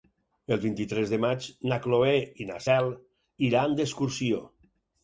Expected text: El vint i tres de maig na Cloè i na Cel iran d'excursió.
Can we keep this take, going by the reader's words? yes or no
yes